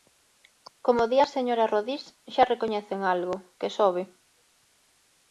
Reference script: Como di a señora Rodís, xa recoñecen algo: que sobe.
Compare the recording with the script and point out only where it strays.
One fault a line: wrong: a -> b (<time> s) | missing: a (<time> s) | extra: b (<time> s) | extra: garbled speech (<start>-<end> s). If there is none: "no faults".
no faults